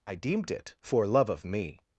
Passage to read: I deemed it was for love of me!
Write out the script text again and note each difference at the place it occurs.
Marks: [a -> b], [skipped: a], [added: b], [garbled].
I deemed it [skipped: was] for love of me!